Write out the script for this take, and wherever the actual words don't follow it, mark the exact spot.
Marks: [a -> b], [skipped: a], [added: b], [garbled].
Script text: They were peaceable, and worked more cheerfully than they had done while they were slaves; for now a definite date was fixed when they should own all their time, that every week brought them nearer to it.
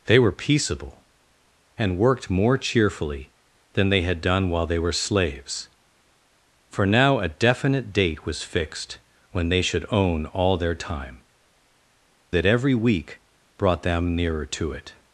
They were peaceable, and worked more cheerfully than they had done while they were slaves; for now a definite date was fixed when they should own all their time, that every week brought them nearer to it.